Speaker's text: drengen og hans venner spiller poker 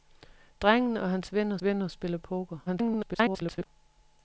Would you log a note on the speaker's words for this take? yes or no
yes